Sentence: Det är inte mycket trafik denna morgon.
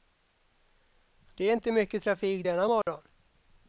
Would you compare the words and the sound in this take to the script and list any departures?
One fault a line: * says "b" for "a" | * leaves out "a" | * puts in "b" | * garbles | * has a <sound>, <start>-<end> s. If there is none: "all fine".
* has a dropout, 2.8-2.9 s